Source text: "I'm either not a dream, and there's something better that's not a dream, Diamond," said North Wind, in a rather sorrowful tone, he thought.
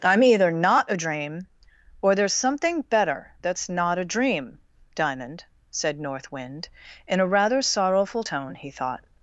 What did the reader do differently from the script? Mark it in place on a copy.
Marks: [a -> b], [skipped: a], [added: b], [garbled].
"I'm either not a dream, [and -> or] there's something better that's not a dream, Diamond," said North Wind, in a rather sorrowful tone, he thought.